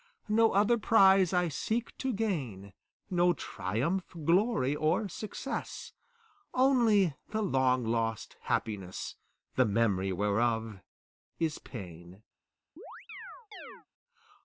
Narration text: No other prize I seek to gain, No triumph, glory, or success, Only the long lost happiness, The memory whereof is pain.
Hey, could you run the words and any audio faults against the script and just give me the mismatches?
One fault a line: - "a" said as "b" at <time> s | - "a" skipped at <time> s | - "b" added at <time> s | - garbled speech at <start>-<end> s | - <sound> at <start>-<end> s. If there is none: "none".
- chirp at 12.8-13.9 s